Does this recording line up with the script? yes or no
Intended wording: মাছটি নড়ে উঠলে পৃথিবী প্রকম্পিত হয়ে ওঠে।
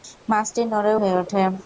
no